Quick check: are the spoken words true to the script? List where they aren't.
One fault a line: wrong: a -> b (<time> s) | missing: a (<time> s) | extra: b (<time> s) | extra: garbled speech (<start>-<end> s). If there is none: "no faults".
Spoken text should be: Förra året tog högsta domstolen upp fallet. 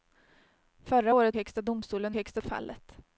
missing: tog (1.4 s)
wrong: upp -> högsta (2.1 s)